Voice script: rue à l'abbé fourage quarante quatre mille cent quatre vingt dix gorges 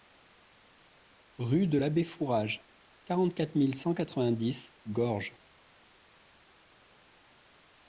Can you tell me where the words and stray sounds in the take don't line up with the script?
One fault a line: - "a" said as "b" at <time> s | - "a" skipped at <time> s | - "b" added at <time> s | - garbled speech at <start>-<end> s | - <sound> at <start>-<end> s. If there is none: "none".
- "à" said as "de" at 1.7 s